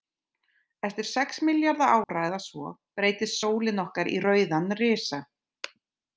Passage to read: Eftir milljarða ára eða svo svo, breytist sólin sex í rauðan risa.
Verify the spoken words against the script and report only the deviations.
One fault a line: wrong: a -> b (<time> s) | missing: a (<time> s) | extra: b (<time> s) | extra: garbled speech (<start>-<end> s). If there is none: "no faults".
extra: sex (1.1 s)
missing: svo (2.7 s)
wrong: sex -> okkar (3.9 s)